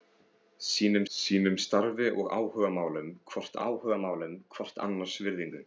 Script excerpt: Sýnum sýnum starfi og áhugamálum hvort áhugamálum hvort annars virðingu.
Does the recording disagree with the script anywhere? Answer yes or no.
no